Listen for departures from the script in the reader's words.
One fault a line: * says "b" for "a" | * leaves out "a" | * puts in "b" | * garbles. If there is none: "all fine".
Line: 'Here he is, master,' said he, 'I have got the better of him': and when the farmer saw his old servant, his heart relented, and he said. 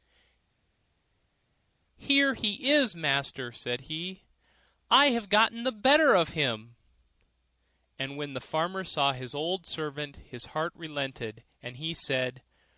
all fine